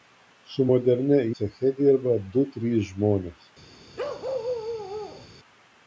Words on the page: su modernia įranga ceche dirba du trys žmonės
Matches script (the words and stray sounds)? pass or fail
fail